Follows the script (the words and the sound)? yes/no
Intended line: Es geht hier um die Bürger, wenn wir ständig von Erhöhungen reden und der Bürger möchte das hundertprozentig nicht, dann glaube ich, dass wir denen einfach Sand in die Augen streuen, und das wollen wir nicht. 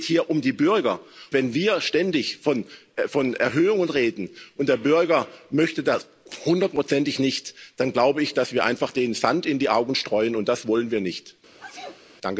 no